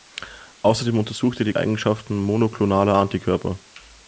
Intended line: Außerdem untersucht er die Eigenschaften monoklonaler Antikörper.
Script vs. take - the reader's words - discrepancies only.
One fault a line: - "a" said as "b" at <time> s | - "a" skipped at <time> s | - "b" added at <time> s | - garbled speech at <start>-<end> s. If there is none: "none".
none